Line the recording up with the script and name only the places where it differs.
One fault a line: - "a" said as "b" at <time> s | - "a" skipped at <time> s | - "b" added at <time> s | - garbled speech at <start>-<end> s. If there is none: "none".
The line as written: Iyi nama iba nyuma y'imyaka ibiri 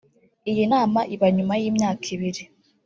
none